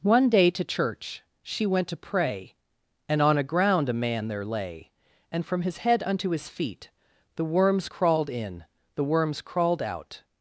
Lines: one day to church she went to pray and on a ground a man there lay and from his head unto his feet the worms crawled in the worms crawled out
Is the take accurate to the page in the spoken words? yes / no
yes